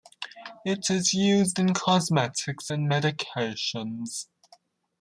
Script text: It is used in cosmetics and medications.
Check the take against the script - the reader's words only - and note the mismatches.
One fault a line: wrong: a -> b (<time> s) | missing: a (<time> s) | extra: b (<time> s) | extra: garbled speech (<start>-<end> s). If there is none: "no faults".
no faults